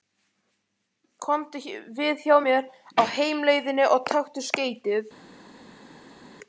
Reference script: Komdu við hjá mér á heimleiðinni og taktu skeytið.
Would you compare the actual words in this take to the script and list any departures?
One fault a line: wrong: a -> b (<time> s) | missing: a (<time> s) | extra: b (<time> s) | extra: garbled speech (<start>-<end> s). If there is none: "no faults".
no faults